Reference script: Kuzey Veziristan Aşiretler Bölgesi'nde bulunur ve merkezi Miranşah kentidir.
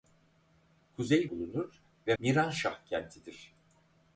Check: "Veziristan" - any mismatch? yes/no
yes